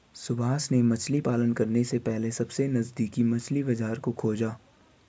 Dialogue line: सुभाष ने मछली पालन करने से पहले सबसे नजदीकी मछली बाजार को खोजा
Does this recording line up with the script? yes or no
yes